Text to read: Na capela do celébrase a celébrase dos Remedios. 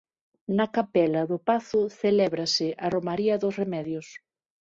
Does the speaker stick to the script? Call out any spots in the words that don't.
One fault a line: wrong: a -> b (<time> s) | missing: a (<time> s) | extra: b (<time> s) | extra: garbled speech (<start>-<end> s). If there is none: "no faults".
extra: pazo (1.5 s)
wrong: celébrase -> romaría (2.9 s)